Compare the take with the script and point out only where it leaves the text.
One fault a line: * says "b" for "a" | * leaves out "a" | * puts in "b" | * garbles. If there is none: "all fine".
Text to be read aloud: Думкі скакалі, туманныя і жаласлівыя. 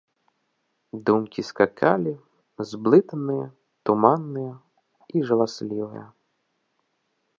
* puts in "зблытаныя"